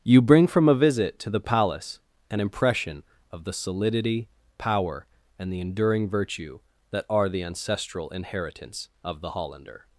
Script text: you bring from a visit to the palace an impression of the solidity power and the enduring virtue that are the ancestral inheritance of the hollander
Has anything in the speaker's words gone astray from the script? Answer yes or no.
no